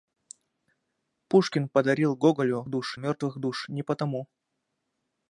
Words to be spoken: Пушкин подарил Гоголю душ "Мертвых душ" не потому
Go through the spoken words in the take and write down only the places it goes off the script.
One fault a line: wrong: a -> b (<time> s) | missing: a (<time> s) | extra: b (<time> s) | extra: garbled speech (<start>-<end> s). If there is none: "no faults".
no faults